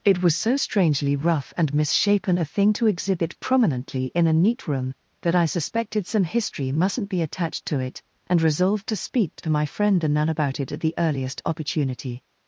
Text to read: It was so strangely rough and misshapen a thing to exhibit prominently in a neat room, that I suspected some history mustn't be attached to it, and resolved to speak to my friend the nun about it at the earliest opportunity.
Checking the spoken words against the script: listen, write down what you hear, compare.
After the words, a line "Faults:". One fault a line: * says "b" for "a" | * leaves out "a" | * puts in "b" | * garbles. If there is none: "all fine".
It was so strangely rough and misshapen a thing to exhibit prominently in a neat room, that I suspected some history mustn't be attached to it, and resolved to speak to my friend the nun about it at the earliest opportunity.
Faults:
all fine